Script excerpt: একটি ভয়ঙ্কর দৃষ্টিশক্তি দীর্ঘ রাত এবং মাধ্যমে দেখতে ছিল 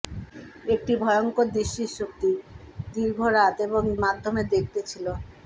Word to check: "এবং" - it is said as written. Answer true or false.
true